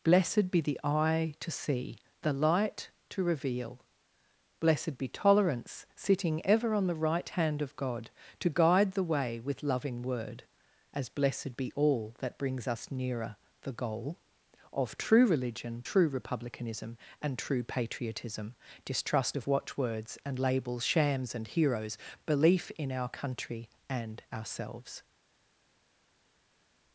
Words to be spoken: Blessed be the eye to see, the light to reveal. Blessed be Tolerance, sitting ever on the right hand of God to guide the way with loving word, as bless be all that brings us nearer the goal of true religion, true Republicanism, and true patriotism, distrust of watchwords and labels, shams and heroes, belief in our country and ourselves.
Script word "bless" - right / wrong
wrong